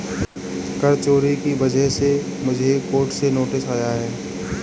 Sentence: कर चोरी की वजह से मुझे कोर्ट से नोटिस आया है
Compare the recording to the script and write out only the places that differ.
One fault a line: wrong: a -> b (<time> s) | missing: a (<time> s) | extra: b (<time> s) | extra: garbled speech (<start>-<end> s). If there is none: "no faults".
no faults